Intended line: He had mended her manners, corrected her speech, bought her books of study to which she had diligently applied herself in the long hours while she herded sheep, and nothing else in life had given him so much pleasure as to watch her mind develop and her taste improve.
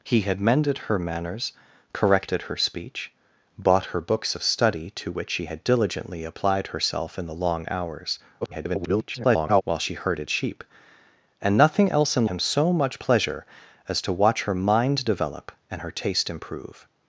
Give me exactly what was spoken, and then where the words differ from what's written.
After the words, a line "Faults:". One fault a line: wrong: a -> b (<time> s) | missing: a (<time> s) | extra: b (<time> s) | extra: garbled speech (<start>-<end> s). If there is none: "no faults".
He had mended her manners, corrected her speech, bought her books of study to which she had diligently applied herself in the long hours [garbled] while she herded sheep, and nothing else in him so much pleasure as to watch her mind develop and her taste improve.
Faults:
extra: garbled speech (8.4-9.6 s)
missing: life had given (12.2 s)